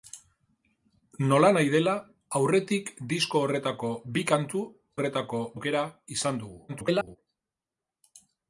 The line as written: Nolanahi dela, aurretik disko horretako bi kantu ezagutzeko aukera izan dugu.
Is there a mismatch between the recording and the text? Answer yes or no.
yes